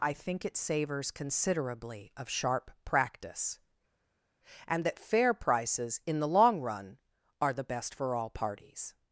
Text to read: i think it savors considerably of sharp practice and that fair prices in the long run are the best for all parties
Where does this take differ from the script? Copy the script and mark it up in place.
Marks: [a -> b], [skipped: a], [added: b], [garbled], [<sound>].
i think it savors considerably of sharp practice and that fair prices in the long run are the best for all parties